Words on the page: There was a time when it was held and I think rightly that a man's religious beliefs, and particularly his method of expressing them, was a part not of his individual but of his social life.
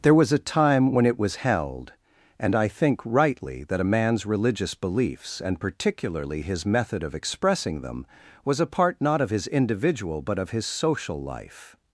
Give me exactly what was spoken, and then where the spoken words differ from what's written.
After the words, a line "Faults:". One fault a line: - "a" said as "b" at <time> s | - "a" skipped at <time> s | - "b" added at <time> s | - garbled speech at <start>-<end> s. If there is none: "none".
There was a time when it was held and I think rightly that a man's religious beliefs, and particularly his method of expressing them, was a part not of his individual but of his social life.
Faults:
none